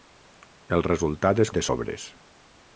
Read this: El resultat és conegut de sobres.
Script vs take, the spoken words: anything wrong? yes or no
yes